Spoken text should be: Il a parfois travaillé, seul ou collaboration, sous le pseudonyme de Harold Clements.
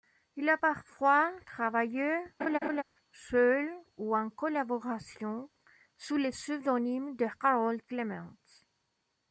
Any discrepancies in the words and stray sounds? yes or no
yes